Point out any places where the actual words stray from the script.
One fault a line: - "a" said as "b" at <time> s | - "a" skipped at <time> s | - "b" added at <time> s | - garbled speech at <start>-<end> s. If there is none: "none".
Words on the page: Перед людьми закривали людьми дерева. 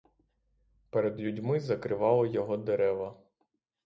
- "людьми" said as "його" at 2.3 s